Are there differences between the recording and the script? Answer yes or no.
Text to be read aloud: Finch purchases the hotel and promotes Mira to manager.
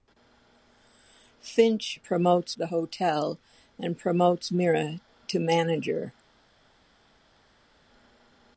yes